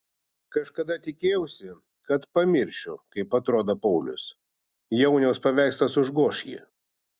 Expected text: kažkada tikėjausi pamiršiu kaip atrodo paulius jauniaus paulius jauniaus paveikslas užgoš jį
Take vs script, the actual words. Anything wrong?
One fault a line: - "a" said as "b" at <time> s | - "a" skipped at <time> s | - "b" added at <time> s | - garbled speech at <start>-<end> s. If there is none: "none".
- "kad" added at 2.1 s
- "paulius jauniaus" skipped at 5.5 s